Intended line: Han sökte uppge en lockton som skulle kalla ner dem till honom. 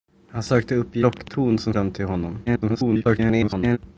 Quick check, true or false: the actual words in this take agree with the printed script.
false